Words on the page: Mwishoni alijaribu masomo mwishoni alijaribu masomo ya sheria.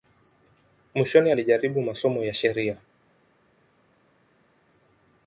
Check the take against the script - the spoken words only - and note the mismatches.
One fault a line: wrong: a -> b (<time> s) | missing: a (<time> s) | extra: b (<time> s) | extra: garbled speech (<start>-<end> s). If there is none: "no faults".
missing: mwishoni alijaribu masomo (2.2 s)